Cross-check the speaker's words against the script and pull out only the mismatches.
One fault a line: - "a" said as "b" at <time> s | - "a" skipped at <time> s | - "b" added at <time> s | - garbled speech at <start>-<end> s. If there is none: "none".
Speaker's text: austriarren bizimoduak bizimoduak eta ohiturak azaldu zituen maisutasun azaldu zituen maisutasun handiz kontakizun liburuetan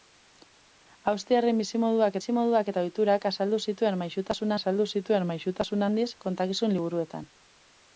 none